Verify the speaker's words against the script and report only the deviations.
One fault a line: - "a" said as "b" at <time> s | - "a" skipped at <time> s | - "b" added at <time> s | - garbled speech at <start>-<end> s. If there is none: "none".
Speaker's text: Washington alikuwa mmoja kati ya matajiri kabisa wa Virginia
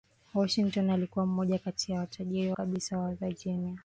none